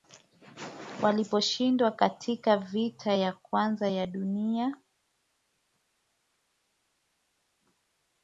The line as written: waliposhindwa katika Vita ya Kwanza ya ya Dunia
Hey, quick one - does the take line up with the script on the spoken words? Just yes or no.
no